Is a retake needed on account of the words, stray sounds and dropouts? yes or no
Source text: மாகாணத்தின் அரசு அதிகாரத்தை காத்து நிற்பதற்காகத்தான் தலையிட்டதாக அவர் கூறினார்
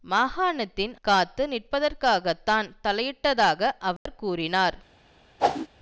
yes